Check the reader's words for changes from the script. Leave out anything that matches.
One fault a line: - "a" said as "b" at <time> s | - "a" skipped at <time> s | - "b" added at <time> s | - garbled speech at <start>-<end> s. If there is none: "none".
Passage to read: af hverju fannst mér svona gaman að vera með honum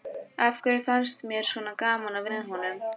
- "vera" skipped at 2.3 s